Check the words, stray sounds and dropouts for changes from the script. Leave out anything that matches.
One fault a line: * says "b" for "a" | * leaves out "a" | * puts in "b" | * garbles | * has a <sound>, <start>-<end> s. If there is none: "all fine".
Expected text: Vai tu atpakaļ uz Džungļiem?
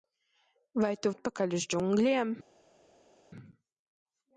all fine